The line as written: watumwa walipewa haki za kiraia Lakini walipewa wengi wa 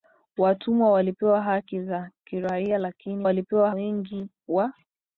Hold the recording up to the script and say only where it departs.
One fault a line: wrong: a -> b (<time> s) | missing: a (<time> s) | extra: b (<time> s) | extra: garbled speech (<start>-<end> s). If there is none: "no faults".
no faults